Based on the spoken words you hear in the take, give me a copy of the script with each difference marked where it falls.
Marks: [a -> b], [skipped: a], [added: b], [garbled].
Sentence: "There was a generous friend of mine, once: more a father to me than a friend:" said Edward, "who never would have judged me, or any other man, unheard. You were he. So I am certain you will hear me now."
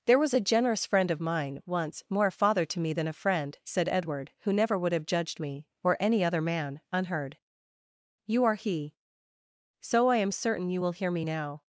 "There was a generous friend of mine, once: more a father to me than a friend:" said Edward, "who never would have judged me, or any other man, unheard. You [were -> are] he. So I am certain you will hear me now."